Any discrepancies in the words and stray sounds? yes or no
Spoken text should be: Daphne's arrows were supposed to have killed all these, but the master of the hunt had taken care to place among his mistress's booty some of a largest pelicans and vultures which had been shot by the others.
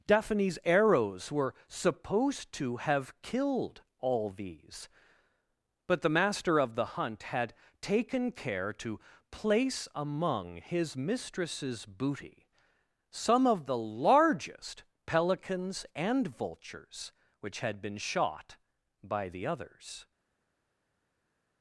yes